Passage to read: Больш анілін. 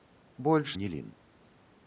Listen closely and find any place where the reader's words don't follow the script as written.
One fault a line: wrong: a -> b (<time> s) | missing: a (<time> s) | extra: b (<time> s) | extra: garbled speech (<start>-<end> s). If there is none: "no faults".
no faults